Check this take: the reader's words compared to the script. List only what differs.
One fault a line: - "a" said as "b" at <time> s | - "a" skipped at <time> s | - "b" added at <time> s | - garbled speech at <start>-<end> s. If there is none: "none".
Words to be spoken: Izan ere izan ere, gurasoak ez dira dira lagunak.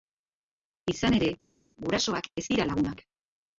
- "izan ere" skipped at 1.3 s
- "dira" skipped at 2.7 s